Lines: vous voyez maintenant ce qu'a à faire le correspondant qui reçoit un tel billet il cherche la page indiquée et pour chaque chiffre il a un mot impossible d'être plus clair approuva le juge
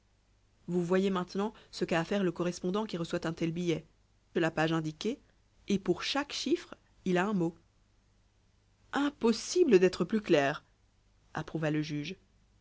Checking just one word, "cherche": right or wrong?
wrong